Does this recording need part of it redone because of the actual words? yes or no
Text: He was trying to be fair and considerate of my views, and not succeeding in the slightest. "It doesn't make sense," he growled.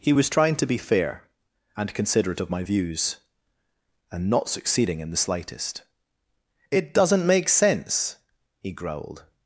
no